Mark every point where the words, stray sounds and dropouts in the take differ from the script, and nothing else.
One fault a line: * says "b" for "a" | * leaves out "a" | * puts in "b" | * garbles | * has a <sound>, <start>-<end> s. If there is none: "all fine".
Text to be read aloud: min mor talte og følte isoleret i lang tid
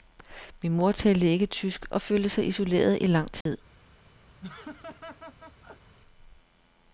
* puts in "ikke tysk"
* puts in "sig"
* has a dropout, 3.4-3.5 s
* has a laugh, 4.4-6.0 s